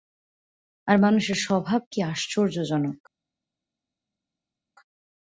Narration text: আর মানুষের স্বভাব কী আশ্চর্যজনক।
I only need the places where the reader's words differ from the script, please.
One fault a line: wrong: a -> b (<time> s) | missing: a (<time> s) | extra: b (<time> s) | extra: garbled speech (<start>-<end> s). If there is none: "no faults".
no faults